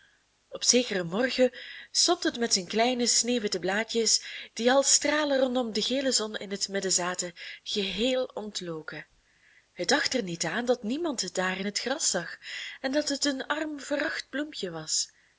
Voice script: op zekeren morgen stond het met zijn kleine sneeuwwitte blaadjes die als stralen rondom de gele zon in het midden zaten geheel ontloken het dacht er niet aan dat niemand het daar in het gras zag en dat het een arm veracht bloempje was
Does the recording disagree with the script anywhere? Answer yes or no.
no